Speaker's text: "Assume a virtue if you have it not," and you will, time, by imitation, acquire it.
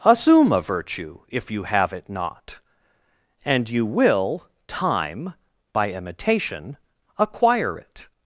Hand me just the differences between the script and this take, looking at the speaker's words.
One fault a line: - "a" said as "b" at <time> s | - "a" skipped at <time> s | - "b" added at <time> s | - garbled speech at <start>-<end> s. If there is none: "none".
none